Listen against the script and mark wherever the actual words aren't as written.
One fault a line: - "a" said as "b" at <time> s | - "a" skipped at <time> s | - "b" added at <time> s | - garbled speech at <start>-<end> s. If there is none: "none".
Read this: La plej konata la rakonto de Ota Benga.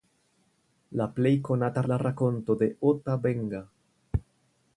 none